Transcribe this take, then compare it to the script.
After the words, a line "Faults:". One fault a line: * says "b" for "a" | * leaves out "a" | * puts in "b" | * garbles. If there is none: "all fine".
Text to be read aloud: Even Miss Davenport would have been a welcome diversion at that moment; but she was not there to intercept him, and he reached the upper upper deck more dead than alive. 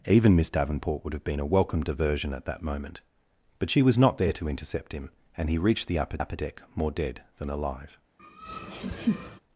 Even Miss Davenport would have been a welcome diversion at that moment; but she was not there to intercept him, and he reached the upper upper deck more dead than alive.
Faults:
all fine